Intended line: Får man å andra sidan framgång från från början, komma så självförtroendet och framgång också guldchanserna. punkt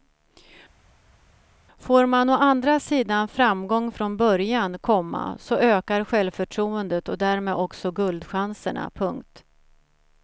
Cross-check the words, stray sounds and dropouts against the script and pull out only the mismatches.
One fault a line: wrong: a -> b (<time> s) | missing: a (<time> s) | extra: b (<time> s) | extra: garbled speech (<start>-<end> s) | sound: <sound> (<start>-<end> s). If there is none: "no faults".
missing: från (4.2 s)
extra: ökar (5.5 s)
wrong: framgång -> därmed (7.2 s)